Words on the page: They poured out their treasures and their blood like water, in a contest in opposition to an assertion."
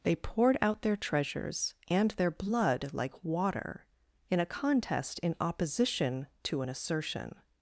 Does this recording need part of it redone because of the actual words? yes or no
no